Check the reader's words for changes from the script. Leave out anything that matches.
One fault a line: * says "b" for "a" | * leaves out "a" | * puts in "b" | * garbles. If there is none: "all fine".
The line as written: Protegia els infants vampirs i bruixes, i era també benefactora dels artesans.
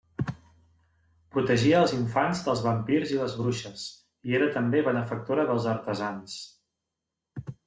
* puts in "dels"
* puts in "les"